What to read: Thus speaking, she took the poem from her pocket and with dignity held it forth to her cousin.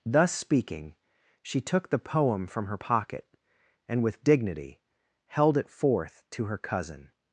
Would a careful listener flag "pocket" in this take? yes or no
no